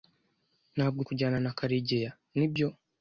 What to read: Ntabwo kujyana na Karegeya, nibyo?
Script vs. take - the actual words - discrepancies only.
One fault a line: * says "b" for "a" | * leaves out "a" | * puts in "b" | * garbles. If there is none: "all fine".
all fine